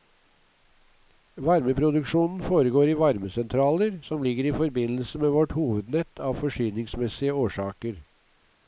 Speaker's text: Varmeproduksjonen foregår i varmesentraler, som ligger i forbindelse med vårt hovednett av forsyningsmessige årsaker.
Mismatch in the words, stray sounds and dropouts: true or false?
false